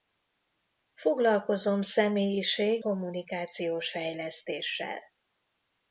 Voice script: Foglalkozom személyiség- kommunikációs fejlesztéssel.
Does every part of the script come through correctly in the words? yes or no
yes